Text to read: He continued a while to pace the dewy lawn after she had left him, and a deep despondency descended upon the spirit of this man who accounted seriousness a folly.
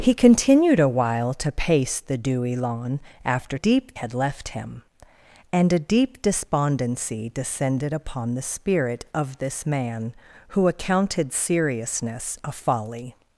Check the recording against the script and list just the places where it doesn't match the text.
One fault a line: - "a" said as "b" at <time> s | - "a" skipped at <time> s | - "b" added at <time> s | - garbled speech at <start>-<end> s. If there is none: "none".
- "she" said as "deep" at 3.5 s